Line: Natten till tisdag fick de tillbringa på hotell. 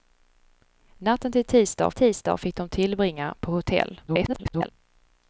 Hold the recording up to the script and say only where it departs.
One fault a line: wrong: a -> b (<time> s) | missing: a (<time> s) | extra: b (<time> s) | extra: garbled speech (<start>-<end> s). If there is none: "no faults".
extra: tisdag (1.9 s)
extra: garbled speech (4.1-4.7 s)